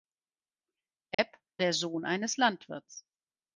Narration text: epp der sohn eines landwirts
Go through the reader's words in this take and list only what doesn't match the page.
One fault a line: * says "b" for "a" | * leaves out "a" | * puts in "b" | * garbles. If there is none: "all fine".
all fine